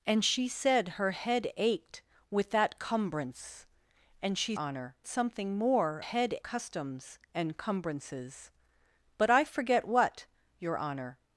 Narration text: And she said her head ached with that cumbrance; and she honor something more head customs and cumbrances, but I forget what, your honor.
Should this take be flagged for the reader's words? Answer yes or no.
no